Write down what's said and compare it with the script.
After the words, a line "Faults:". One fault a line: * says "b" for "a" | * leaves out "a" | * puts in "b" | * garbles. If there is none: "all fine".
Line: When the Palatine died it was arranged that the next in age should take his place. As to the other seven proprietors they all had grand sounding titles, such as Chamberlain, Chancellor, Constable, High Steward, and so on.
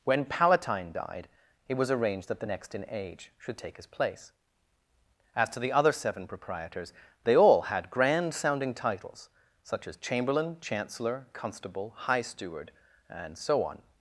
When Palatine died it was arranged that the next in age should take his place. As to the other seven proprietors they all had grand sounding titles, such as Chamberlain, Chancellor, Constable, High Steward, and so on.
Faults:
* leaves out "the"